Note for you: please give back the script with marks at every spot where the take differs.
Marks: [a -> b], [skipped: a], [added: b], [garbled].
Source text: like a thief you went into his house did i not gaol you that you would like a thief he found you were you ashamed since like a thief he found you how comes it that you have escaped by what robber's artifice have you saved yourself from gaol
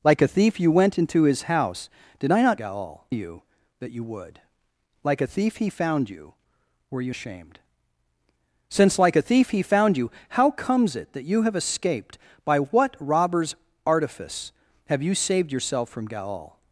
like a thief you went into his house did i not gaol you that you would like a thief he found you were you ashamed since like a thief he found you how comes it that you have escaped by what robber's artifice have you saved yourself from gaol